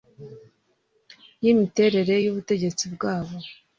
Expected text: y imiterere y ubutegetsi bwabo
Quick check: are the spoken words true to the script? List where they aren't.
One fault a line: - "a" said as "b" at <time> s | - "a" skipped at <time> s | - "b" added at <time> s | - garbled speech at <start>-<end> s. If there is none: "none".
none